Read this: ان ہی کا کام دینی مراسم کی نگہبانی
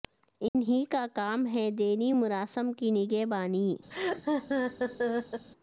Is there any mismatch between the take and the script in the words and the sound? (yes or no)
yes